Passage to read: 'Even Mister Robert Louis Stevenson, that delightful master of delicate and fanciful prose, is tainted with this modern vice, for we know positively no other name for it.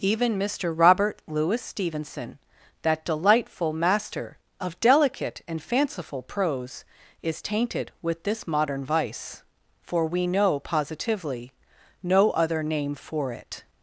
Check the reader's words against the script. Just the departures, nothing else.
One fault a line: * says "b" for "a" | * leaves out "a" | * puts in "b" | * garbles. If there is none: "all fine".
all fine